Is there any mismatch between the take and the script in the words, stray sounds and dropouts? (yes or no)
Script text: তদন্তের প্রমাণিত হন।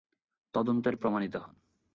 no